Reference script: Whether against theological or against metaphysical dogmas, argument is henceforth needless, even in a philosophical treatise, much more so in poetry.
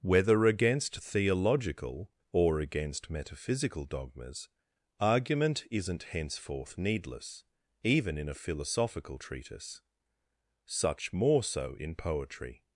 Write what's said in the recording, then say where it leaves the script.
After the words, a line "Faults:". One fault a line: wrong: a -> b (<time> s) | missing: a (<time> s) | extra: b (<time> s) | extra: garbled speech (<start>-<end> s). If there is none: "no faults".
Whether against theological or against metaphysical dogmas, argument isn't henceforth needless, even in a philosophical treatise, such more so in poetry.
Faults:
wrong: is -> isn't (5.7 s)
wrong: much -> such (10.7 s)